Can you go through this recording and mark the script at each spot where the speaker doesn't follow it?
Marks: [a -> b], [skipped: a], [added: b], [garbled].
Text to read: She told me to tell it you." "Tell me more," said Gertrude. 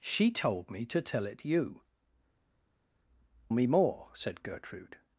She told me to tell it you." [skipped: "Tell] me more," said Gertrude.